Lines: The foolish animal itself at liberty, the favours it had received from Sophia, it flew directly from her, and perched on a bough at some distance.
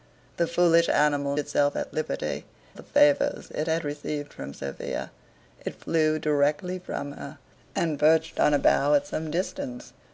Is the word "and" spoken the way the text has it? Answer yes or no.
yes